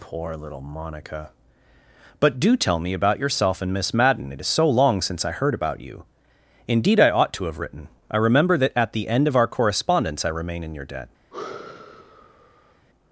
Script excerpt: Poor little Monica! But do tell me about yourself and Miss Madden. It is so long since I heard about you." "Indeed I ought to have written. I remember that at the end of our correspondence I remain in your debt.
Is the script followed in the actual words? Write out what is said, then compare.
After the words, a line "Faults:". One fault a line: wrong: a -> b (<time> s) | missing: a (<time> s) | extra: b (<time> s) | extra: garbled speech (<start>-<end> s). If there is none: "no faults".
Poor little Monica! But do tell me about yourself and Miss Madden. It is so long since I heard about you." "Indeed I ought to have written. I remember that at the end of our correspondence I remain in your debt.
Faults:
no faults